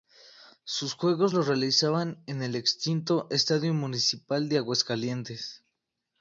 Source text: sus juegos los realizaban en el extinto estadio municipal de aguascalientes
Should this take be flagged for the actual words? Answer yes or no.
no